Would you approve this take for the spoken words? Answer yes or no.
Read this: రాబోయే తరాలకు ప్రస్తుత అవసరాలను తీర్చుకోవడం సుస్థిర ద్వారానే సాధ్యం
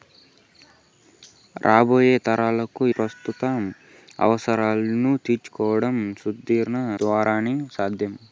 yes